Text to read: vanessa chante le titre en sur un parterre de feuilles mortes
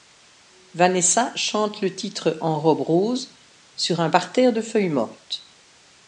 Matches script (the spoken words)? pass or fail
fail